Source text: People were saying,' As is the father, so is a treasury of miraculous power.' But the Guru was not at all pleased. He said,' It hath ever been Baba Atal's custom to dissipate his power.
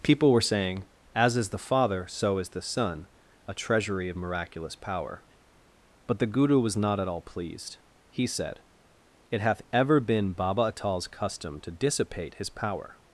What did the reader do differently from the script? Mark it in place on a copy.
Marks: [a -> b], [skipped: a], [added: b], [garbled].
People were saying,' As is the father, so is [added: the son] a treasury of miraculous power.' But the Guru was not at all pleased. He said,' It hath ever been Baba Atal's custom to dissipate his power.